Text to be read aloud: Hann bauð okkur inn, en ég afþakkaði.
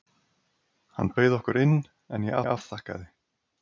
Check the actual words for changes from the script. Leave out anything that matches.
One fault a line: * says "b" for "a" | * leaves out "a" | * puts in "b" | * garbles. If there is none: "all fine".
* puts in "ég"